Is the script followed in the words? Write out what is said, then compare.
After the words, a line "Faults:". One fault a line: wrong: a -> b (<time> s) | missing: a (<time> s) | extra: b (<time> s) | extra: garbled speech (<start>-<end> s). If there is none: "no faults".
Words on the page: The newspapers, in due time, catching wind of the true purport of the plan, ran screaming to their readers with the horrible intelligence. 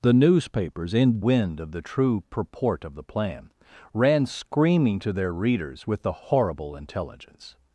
The newspapers, in wind of the true purport of the plan, ran screaming to their readers with the horrible intelligence.
Faults:
missing: due time catching (1.2 s)